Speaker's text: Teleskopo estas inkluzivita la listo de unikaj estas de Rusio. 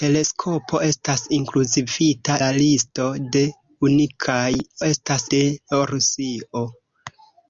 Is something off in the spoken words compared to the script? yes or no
no